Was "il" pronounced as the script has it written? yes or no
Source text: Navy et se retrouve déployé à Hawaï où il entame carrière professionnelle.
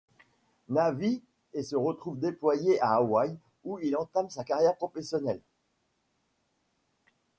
yes